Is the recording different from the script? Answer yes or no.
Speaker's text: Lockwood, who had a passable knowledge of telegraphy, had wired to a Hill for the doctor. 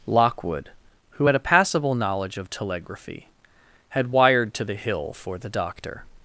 yes